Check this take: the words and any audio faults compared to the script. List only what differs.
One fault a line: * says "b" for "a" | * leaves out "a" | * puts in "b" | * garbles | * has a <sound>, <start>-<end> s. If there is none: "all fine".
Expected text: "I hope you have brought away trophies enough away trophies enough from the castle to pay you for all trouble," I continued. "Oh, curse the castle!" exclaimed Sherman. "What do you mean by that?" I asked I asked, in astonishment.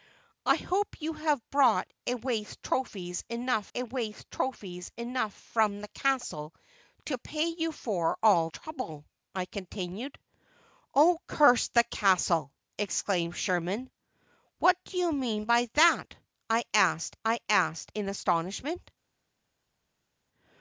all fine